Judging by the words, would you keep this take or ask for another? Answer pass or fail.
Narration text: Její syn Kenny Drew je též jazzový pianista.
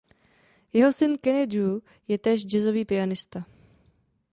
fail